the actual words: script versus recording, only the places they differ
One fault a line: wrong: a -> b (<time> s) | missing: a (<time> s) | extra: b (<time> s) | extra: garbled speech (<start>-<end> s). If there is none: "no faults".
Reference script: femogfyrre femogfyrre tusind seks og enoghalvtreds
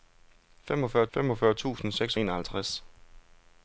no faults